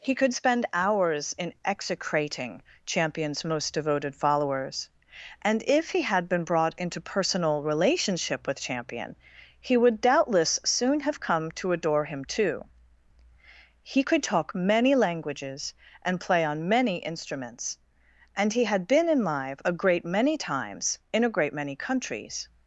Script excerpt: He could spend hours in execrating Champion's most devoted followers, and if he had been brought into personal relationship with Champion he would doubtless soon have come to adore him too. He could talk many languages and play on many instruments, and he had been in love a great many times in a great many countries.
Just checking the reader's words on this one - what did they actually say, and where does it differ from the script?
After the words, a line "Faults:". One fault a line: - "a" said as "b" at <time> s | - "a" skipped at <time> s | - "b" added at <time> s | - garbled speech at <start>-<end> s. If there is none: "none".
He could spend hours in execrating Champion's most devoted followers, and if he had been brought into personal relationship with Champion he would doubtless soon have come to adore him too. He could talk many languages and play on many instruments, and he had been in live a great many times in a great many countries.
Faults:
- "love" said as "live" at 19.3 s